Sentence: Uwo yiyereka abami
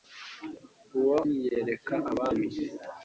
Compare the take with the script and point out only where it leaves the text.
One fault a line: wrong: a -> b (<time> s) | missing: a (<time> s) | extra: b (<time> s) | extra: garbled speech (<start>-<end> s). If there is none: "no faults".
no faults